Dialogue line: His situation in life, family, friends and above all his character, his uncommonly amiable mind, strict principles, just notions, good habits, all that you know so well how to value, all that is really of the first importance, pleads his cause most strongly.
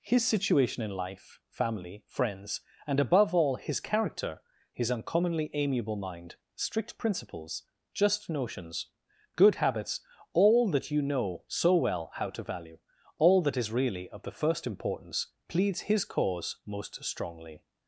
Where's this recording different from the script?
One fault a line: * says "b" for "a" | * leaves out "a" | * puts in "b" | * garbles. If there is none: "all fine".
all fine